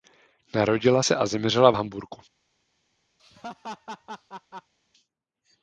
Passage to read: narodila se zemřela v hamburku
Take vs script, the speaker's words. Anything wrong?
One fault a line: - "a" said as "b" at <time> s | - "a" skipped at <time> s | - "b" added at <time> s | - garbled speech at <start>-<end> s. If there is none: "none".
- "a" added at 1.2 s